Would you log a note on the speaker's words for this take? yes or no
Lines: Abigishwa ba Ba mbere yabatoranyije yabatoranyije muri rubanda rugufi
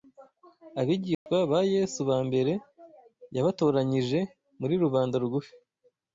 yes